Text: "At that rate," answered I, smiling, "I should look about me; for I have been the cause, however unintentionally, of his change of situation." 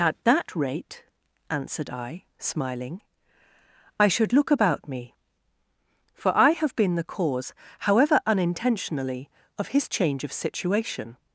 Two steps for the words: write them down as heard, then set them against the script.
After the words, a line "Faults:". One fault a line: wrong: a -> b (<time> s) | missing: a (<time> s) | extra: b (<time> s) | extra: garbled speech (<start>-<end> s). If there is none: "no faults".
"At that rate," answered I, smiling, "I should look about me; for I have been the cause, however unintentionally, of his change of situation."
Faults:
no faults